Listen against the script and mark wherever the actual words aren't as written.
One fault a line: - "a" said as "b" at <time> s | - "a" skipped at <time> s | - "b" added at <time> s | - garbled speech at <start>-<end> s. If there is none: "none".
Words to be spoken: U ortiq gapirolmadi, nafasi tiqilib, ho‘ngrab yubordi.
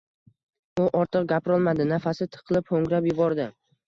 none